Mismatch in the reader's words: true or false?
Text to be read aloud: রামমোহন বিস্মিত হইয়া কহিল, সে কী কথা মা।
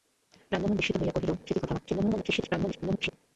true